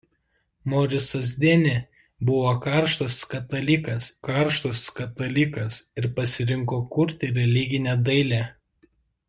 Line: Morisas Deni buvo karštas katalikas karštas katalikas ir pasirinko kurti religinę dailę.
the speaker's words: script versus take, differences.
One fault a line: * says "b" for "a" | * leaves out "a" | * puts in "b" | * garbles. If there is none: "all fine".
all fine